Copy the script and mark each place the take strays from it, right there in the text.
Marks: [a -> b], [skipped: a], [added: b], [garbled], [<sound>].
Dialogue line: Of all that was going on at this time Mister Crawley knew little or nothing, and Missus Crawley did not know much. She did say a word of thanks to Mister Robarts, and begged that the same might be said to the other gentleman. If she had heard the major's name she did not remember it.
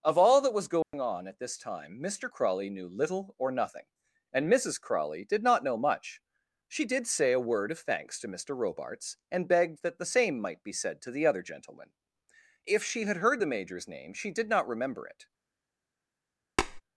Of all that was going [dropout] on at this time Mister Crawley knew little or nothing, and Missus Crawley did not know much. She did say a word of thanks to Mister Robarts, and begged that the same might be said to the other gentleman. If she had heard the major's name she did not remember it. [tap]